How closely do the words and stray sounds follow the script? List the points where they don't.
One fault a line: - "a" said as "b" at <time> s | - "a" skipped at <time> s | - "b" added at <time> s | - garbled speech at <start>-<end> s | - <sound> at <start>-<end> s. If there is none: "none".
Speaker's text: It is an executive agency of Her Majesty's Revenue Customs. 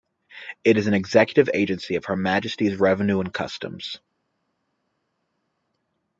- "and" added at 3.2 s